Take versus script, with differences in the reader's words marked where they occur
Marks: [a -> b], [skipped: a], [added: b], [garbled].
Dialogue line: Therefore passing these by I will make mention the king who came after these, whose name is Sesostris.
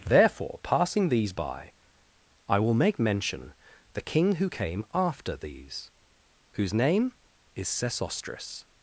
Therefore passing these by I will make mention the king who came after these, whose name is Sesostris.